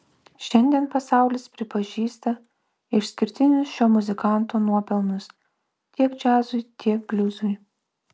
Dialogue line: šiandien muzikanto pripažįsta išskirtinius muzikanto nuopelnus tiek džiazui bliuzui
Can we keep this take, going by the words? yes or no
no